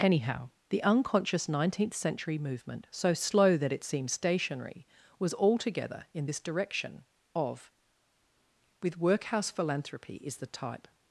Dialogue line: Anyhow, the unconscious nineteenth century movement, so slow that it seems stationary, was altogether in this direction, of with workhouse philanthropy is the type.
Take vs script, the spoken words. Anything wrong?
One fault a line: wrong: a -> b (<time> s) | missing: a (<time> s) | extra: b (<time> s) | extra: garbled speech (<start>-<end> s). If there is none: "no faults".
no faults